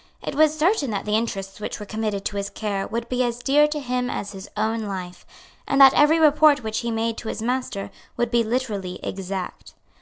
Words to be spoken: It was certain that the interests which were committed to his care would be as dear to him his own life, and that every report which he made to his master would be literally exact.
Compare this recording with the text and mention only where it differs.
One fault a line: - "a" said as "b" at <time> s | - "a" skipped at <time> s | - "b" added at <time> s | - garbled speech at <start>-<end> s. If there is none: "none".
- "as" added at 4.1 s